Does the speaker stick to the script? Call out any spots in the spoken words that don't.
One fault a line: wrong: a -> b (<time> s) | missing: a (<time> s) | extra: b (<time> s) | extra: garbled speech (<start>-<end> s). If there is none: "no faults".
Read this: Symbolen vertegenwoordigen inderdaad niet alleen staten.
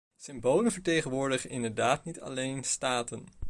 no faults